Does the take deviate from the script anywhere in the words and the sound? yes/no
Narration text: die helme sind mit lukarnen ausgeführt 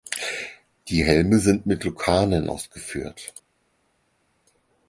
no